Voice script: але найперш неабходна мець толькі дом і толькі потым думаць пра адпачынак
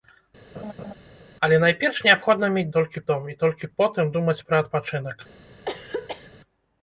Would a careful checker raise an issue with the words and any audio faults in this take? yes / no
yes